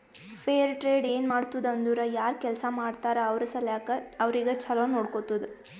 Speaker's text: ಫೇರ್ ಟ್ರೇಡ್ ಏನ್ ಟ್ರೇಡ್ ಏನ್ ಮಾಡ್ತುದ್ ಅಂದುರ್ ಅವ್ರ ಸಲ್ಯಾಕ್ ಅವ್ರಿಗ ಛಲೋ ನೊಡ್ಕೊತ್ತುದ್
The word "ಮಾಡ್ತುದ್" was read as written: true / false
false